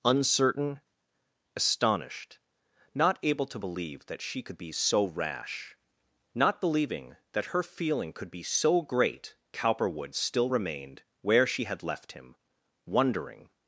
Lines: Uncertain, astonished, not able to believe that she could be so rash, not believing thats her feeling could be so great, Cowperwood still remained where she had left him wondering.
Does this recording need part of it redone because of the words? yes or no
yes